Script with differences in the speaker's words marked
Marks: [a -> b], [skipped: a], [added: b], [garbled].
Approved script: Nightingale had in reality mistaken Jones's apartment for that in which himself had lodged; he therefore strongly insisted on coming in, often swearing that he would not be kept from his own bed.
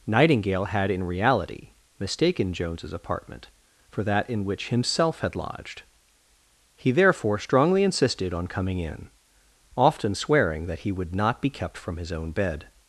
Nightingale had in reality mistaken Jones's apartment for that in which himself had lodged; he therefore strongly insisted on coming in, often swearing that he would not be kept from his own bed.